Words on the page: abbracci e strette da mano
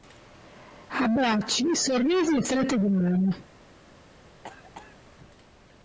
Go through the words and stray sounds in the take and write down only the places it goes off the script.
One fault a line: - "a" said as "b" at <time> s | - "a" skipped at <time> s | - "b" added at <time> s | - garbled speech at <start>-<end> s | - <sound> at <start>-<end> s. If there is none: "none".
- "sorrisi" added at 1.8 s
- "da" said as "di" at 2.8 s
- cough at 4.4-5.0 s